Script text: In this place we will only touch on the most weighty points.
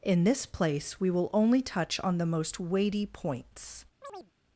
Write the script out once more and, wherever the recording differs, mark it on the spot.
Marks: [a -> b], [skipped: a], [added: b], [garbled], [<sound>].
In this place we will only touch on the most weighty points. [chirp]